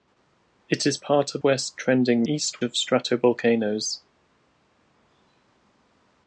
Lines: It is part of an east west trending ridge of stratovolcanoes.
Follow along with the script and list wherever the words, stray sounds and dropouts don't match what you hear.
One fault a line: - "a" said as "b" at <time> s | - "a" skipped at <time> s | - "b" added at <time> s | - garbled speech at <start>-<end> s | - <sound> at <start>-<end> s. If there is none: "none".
- "an east" skipped at 1.4 s
- "ridge" said as "east" at 2.2 s